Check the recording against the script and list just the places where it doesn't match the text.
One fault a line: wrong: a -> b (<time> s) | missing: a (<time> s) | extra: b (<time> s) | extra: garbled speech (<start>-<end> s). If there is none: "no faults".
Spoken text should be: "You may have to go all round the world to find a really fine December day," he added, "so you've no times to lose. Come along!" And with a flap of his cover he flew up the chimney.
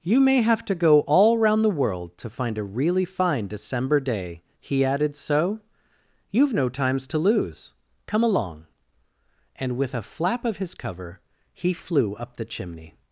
no faults